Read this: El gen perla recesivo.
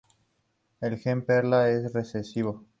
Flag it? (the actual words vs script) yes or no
yes